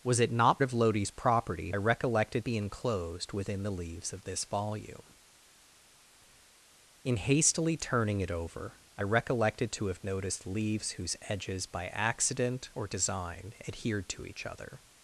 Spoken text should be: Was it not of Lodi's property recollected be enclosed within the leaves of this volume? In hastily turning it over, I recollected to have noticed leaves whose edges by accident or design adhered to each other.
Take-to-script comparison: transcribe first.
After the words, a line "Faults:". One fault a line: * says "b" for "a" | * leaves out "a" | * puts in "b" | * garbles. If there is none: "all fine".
Was it not of Lodi's property recollected be enclosed within the leaves of this volume? In hastily turning it over, I recollected to have noticed leaves whose edges by accident or design adhered to each other.
Faults:
all fine